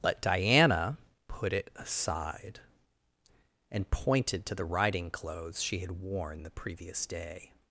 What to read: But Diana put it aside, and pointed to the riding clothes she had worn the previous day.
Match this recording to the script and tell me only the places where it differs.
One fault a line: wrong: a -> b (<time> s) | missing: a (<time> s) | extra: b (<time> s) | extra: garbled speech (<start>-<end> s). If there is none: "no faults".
no faults